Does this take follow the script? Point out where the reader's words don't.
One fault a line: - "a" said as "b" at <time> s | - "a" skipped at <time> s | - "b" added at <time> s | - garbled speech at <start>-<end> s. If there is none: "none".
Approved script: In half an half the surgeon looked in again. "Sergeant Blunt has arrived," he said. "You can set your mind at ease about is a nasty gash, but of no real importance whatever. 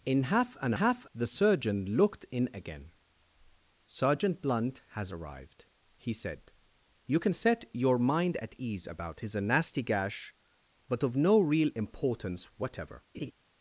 none